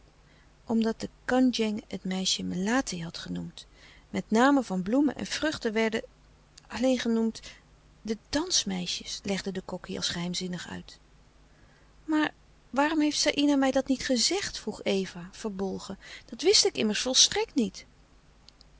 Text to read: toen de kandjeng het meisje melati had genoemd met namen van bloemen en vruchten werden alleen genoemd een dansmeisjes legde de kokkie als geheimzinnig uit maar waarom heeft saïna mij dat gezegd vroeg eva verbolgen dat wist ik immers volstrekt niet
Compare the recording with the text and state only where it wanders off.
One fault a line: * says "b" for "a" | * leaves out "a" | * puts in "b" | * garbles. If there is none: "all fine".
* says "omdat" for "toen"
* says "de" for "een"
* puts in "niet"